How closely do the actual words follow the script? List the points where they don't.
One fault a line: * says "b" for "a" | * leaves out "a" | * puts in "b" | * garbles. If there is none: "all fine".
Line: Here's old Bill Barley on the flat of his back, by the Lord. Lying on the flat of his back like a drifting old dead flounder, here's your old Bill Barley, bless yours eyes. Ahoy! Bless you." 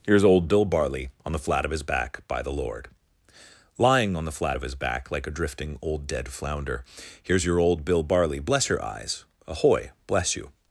* says "your" for "yours"